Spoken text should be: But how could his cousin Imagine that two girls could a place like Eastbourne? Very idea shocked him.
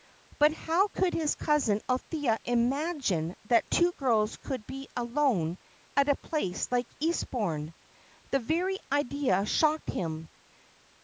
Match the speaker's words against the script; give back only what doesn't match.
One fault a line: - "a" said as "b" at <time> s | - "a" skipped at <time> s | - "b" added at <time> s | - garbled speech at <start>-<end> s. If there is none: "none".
- "Althea" added at 1.9 s
- "be alone at" added at 4.7 s
- "The" added at 8.3 s